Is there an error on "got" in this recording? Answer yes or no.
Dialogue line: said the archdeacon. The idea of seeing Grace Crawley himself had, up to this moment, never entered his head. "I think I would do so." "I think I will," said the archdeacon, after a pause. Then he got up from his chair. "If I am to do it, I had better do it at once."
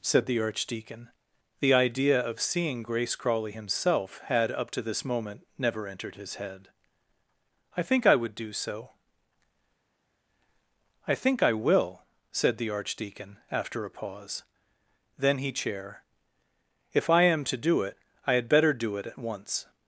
yes